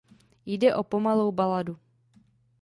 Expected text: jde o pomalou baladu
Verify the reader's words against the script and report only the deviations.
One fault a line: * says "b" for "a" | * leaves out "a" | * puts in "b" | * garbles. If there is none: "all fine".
all fine